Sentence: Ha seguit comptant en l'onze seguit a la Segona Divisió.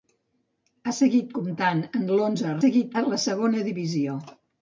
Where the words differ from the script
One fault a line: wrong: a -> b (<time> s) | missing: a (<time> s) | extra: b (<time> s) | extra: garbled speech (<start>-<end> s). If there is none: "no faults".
no faults